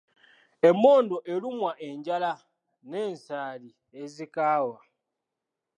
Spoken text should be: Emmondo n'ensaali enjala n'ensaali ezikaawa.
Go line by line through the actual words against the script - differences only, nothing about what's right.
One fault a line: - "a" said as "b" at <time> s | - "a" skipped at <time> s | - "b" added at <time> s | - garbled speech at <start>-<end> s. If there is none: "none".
- "n'ensaali" said as "erumwa" at 1.3 s